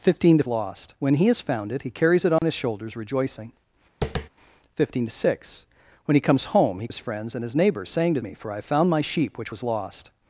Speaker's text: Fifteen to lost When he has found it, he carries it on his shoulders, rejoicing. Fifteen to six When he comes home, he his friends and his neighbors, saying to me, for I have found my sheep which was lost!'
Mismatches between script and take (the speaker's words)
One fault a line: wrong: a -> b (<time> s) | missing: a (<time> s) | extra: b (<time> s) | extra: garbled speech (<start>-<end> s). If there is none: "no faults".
no faults